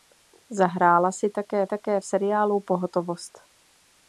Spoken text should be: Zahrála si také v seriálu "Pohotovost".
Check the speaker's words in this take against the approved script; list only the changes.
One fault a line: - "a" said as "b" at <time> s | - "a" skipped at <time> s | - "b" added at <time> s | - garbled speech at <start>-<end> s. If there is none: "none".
- "také" added at 1.6 s